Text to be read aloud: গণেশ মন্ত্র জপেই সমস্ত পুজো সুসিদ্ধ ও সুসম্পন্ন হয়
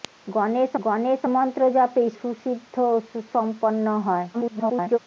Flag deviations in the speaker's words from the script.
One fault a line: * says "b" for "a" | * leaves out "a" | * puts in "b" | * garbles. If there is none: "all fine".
* puts in "গণেশ"
* leaves out "সমস্ত পুজো"
* garbles